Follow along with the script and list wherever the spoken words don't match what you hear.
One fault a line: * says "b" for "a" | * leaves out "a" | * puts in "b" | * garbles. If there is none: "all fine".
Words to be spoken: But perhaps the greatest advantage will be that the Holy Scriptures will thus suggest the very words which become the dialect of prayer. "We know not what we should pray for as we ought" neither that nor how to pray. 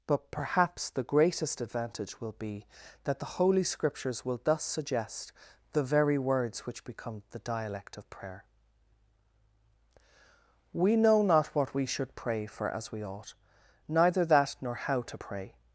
all fine